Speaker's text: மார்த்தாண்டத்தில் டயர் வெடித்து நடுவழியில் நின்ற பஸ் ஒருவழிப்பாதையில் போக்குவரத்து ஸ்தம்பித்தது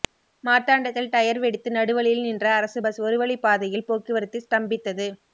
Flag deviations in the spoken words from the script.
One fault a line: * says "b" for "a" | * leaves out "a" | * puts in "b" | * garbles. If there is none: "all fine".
* puts in "அரசு"